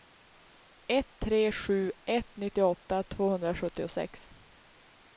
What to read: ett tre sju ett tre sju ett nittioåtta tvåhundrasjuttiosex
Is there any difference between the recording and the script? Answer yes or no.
yes